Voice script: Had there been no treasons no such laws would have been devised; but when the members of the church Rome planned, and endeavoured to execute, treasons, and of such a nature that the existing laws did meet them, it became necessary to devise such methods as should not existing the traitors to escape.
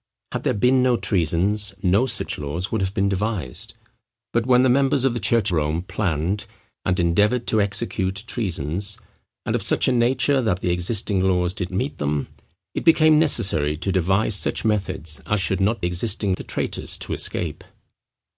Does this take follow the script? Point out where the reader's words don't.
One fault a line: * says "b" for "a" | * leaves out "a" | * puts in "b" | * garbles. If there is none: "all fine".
all fine